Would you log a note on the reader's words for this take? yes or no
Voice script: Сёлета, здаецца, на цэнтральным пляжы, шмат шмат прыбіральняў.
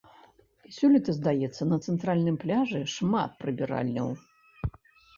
yes